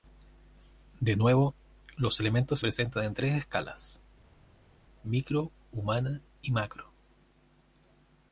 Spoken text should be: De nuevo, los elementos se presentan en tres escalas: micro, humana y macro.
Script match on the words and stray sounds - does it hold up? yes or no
no